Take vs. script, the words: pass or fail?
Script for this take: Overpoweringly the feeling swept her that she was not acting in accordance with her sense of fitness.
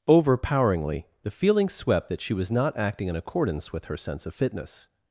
fail